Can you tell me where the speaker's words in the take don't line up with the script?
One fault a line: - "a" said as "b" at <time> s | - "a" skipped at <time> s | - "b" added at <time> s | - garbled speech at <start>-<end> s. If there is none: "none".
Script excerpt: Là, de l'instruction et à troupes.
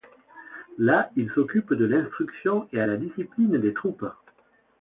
- "il s'occupe" added at 1.1 s
- "la discipline des" added at 2.8 s